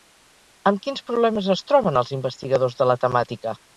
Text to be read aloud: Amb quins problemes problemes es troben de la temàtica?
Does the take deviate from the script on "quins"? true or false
false